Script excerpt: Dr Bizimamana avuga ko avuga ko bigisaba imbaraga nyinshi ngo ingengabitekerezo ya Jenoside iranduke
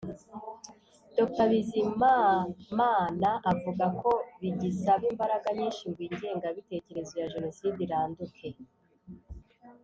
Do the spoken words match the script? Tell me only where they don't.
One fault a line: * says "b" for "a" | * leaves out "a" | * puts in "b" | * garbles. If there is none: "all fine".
* leaves out "avuga ko"